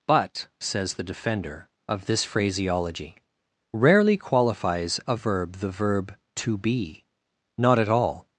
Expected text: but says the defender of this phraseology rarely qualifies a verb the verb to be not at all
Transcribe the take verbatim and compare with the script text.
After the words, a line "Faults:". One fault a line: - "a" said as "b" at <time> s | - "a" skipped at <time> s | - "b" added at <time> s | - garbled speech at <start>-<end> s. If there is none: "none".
but says the defender of this phraseology rarely qualifies a verb the verb to be not at all
Faults:
none